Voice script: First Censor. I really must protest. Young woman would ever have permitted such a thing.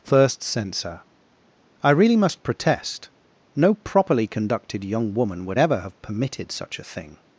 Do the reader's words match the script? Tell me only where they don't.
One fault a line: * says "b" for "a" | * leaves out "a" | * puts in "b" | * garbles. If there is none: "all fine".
* puts in "No properly conducted"